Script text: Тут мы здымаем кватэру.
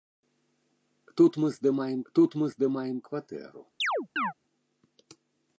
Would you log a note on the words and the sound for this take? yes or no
yes